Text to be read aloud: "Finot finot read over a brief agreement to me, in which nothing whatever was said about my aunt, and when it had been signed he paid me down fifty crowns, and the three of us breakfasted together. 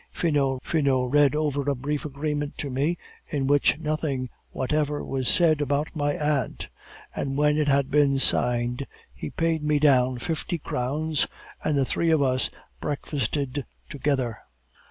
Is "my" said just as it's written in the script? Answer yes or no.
yes